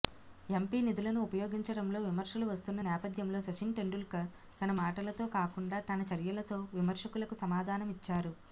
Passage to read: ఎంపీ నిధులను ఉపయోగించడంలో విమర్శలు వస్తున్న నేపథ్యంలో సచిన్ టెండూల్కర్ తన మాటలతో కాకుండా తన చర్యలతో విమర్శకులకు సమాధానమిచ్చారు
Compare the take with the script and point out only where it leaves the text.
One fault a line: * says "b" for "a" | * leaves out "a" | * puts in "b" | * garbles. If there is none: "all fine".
all fine